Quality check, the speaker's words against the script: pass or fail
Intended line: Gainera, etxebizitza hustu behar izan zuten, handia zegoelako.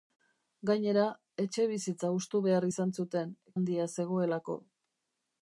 pass